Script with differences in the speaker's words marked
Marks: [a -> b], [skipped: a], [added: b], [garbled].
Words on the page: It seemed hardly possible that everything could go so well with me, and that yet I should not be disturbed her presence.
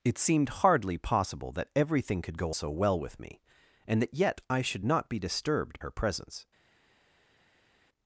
It seemed hardly possible that everything could go so well with me, and that yet I should not be disturbed her presence.